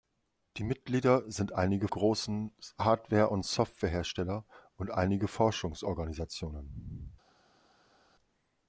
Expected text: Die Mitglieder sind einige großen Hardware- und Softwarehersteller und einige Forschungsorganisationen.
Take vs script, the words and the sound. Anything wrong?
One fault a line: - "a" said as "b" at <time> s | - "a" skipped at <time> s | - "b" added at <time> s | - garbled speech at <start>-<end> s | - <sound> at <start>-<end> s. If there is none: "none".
none